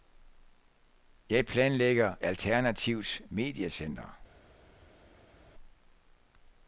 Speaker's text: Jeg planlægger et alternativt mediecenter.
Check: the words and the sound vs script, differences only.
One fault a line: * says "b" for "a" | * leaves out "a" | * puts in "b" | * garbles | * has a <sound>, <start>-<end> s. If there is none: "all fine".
* leaves out "et"